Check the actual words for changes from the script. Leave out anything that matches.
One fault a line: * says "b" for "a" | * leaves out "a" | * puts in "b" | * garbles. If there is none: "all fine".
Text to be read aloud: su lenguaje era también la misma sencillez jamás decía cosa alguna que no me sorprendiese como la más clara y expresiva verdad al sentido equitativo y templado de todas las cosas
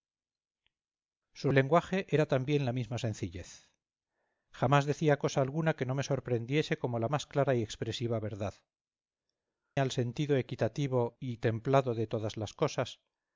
all fine